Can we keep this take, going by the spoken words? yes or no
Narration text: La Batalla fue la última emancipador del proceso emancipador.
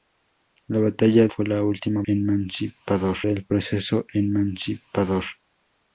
yes